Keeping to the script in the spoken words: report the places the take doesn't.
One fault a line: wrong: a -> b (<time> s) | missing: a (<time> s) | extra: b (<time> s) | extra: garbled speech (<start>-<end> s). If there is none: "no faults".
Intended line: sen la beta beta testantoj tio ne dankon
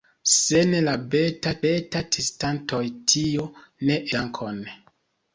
no faults